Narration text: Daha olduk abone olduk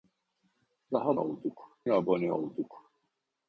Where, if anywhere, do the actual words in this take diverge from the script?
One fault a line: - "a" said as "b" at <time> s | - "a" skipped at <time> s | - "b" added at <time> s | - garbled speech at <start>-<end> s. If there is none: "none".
none